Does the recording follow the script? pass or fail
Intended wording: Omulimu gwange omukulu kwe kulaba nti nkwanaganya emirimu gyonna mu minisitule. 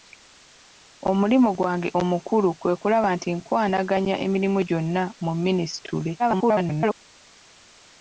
fail